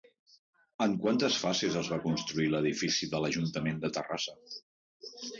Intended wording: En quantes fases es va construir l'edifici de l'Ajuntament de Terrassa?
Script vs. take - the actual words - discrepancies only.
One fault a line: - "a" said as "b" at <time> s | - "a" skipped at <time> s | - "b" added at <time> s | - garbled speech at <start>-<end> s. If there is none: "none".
none